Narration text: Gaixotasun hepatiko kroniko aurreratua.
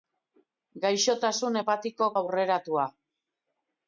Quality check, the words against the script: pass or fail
fail